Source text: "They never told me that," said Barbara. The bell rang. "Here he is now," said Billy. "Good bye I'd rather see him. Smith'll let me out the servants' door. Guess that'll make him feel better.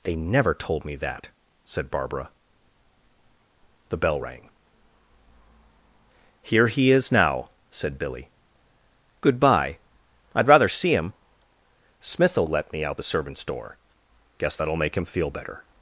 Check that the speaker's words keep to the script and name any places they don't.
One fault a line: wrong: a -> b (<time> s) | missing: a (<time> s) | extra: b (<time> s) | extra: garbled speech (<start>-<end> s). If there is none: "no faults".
no faults